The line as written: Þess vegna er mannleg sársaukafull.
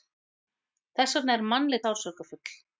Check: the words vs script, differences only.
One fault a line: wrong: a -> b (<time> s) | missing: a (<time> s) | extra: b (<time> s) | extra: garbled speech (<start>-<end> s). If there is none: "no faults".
no faults